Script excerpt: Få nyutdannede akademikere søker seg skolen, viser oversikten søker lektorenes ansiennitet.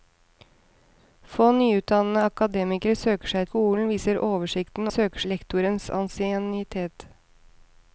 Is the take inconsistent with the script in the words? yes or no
no